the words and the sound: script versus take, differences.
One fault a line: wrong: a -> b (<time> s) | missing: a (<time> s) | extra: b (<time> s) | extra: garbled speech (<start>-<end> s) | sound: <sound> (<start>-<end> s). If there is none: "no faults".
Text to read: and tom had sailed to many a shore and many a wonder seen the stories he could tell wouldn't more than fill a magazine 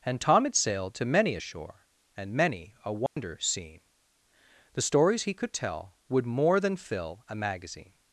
sound: dropout (3.1-3.2 s)
wrong: wouldn't -> would (6.1 s)